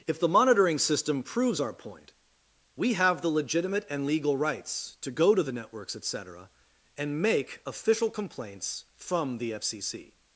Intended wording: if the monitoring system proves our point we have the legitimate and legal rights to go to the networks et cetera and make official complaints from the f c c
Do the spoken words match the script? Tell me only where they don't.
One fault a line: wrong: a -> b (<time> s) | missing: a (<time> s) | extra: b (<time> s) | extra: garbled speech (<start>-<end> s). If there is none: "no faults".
no faults